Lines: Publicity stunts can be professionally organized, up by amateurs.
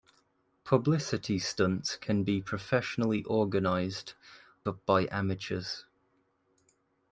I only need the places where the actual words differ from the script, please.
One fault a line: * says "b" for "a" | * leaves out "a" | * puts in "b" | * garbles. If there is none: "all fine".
all fine